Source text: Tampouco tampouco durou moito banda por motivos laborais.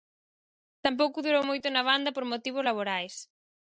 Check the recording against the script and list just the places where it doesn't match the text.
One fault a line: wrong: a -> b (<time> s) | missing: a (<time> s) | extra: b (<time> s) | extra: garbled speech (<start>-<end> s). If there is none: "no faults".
missing: tampouco (1.2 s)
extra: na (1.7 s)